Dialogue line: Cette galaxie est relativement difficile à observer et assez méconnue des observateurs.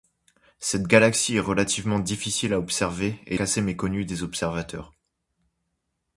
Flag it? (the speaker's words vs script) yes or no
no